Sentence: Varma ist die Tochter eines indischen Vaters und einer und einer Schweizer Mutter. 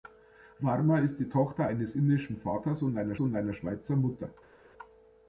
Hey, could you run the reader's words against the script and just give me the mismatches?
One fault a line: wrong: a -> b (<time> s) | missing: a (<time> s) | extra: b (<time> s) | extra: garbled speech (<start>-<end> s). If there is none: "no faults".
no faults